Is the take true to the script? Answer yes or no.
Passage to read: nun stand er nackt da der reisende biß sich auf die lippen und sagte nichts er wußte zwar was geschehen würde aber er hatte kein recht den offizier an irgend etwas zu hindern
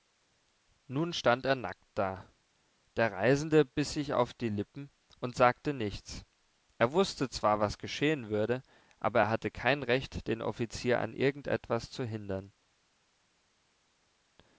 yes